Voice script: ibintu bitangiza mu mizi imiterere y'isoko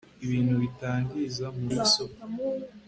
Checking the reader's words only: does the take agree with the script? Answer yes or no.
no